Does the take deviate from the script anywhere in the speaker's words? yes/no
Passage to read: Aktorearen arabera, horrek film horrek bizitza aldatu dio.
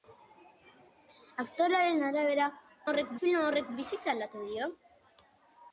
no